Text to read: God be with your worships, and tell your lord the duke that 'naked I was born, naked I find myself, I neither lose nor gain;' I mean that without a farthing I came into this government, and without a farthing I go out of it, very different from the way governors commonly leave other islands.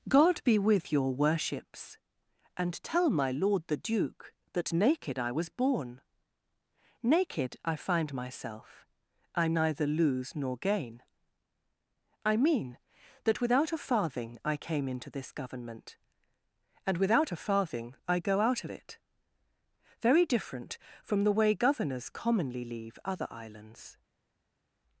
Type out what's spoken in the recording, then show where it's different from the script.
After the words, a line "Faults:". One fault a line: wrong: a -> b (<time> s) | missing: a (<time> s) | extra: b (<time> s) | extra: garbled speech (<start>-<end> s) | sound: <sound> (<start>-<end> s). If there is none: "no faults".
God be with your worships, and tell my lord the duke that 'naked I was born, naked I find myself, I neither lose nor gain;' I mean that without a farthing I came into this government, and without a farthing I go out of it, very different from the way governors commonly leave other islands.
Faults:
wrong: your -> my (3.1 s)